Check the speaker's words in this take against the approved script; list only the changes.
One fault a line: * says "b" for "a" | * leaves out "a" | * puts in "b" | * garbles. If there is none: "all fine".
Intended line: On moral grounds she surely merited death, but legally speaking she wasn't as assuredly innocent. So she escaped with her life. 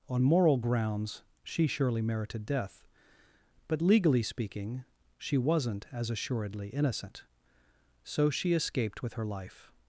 all fine